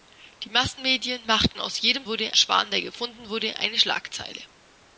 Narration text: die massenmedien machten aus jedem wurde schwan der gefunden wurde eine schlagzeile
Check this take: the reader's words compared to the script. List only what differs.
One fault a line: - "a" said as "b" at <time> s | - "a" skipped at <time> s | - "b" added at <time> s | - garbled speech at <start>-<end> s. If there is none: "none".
none